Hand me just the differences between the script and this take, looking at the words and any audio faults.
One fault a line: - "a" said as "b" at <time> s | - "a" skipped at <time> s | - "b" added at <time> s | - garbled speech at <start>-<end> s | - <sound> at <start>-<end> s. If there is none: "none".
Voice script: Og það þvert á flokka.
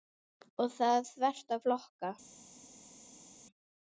none